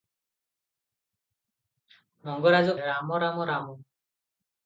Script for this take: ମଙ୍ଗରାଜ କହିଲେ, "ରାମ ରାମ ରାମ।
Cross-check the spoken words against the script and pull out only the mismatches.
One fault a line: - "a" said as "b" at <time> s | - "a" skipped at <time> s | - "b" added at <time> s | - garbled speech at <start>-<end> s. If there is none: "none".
- "କହିଲେ" skipped at 2.8 s